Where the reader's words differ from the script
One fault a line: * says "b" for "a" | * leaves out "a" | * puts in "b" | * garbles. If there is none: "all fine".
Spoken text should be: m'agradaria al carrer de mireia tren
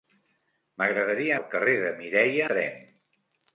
all fine